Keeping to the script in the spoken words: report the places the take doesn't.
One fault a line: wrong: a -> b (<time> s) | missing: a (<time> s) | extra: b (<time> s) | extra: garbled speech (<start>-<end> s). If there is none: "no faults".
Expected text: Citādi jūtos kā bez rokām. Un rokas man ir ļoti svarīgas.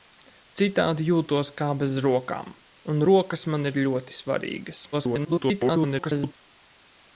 extra: garbled speech (4.9-6.3 s)